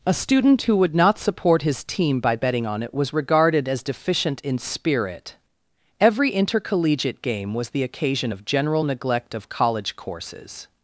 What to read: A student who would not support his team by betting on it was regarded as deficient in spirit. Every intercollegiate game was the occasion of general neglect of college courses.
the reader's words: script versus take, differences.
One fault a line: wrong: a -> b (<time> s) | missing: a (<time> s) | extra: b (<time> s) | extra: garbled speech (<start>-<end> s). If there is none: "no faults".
no faults